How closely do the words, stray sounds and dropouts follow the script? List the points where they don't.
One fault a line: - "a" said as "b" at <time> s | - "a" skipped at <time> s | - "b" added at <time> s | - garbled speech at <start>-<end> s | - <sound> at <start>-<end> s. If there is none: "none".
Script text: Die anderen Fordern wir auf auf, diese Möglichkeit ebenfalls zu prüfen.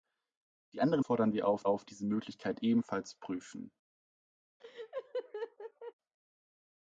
- laugh at 4.6-5.9 s